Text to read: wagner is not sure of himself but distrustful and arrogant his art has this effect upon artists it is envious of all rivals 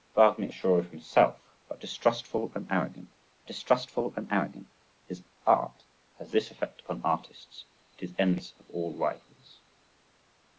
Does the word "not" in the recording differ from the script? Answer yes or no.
yes